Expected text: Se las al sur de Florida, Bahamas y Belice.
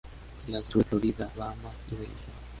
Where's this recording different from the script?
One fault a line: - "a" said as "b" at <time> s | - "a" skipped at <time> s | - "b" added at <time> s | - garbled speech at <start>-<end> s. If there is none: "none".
none